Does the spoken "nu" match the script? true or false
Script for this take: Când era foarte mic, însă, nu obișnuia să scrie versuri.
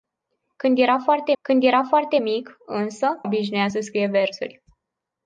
false